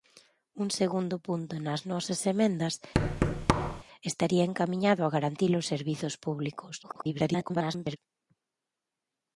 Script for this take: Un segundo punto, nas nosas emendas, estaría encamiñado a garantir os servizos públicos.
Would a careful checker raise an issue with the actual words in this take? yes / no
yes